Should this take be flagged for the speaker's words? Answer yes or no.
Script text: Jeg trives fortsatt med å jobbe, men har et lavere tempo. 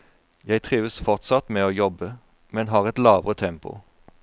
no